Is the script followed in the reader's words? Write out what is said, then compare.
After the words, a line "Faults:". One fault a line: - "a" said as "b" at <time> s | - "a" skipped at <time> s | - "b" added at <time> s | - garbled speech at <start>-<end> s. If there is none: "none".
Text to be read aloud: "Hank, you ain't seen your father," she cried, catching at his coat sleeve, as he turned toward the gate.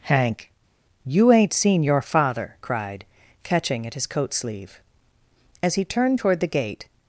"Hank, you ain't seen your father," cried, catching at his coat sleeve, as he turned toward the gate.
Faults:
- "she" skipped at 2.6 s